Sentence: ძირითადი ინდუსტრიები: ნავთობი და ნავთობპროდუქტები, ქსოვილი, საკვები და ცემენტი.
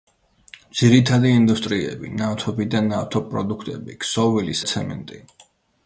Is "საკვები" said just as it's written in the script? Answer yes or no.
no